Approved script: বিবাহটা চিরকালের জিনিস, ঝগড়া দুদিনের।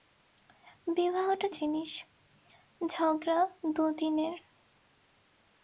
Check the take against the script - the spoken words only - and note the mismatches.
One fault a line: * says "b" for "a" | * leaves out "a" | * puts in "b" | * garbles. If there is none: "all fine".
* leaves out "চিরকালের"